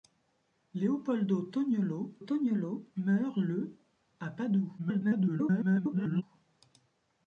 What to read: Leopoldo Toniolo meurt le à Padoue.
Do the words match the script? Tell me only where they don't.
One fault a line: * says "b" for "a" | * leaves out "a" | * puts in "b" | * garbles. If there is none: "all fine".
* puts in "Toniolo"
* garbles